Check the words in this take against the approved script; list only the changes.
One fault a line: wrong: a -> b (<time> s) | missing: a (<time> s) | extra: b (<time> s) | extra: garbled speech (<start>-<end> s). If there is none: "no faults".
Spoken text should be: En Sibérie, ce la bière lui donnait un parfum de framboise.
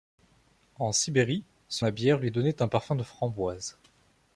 no faults